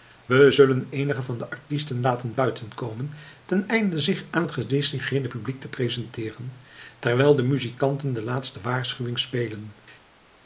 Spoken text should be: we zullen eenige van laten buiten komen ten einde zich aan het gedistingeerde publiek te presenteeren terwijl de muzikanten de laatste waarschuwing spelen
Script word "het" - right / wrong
right